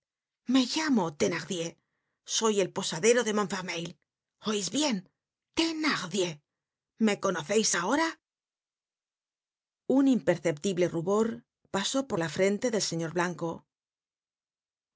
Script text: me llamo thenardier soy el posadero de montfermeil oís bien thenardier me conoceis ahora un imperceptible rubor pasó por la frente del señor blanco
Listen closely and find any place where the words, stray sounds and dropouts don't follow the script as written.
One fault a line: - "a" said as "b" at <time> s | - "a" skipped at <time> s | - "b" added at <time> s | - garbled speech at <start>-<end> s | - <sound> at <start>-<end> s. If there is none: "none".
none